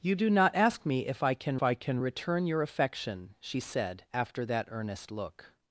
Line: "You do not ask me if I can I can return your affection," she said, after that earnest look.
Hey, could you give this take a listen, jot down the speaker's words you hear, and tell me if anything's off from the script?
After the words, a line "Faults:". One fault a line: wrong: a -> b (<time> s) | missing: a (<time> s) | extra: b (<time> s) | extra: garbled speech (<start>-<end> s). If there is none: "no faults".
"You do not ask me if I can I can return your affection," she said, after that earnest look.
Faults:
no faults